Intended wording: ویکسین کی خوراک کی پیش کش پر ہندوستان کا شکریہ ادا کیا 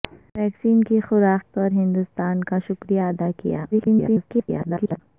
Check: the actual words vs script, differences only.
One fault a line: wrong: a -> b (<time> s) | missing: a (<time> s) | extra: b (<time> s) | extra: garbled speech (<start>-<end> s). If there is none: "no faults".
missing: کی پیش کش (1.5 s)
extra: garbled speech (3.7-5.0 s)